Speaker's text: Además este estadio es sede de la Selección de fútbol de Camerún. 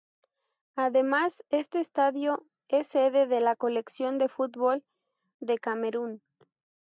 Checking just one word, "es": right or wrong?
right